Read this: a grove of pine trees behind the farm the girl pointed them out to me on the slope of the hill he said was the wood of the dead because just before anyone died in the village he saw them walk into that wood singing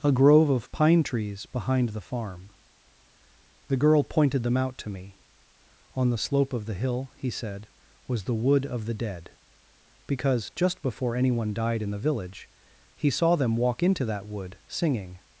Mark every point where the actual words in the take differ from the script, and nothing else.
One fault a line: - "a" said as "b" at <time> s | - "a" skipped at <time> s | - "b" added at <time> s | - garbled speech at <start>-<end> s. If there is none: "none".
none